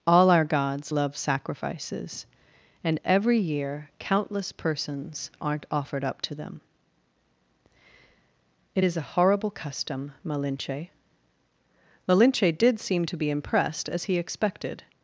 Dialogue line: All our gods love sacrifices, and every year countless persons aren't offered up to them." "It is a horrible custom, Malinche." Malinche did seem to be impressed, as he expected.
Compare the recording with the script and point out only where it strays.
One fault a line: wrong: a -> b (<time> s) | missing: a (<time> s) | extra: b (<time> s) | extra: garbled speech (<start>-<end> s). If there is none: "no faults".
no faults